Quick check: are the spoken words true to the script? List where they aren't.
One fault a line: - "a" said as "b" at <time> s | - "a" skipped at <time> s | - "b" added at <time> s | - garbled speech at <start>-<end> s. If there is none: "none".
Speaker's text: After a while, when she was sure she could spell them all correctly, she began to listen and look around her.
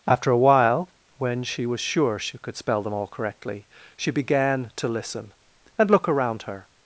none